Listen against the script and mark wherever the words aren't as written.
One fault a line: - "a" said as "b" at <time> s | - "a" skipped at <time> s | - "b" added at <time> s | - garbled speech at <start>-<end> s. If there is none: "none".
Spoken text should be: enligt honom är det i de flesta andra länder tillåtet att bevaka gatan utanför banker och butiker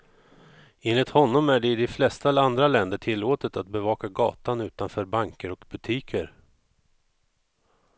none